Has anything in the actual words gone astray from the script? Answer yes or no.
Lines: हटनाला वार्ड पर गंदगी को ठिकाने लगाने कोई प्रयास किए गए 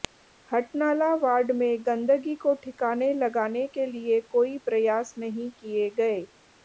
yes